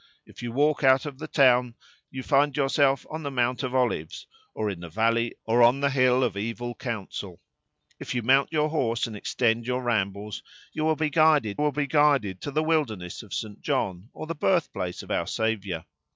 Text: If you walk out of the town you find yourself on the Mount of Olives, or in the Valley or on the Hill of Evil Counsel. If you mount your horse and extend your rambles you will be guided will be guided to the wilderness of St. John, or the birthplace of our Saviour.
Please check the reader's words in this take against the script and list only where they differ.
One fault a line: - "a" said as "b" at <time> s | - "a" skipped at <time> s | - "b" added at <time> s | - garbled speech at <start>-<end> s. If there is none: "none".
none